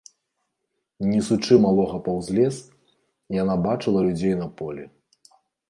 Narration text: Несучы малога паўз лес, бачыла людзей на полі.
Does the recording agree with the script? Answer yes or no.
no